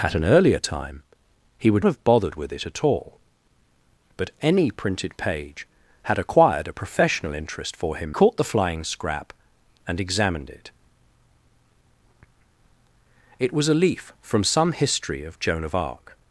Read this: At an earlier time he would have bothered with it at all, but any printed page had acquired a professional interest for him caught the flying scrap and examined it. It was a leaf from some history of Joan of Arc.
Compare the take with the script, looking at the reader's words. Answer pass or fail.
pass